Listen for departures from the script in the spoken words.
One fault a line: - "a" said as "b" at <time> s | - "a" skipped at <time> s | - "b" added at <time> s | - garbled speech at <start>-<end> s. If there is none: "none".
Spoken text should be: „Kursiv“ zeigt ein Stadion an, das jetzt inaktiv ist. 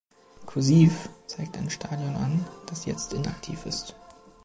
none